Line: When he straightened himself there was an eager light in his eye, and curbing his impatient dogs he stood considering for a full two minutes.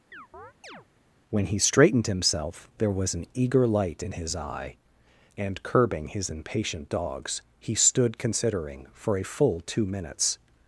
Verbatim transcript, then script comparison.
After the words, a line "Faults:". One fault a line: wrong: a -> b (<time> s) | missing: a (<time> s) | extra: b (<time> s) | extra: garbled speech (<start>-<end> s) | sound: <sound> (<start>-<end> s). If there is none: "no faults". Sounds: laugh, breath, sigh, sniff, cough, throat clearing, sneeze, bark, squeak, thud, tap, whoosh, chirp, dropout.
When he straightened himself there was an eager light in his eye, and curbing his impatient dogs he stood considering for a full two minutes.
Faults:
sound: chirp (0.1-0.9 s)